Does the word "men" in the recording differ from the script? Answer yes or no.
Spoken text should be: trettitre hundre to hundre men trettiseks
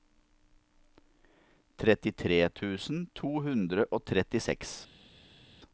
yes